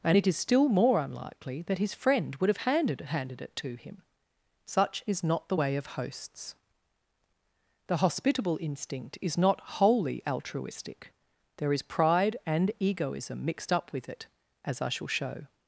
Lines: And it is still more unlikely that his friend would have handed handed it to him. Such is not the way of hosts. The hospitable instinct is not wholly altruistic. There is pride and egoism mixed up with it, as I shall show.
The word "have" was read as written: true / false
true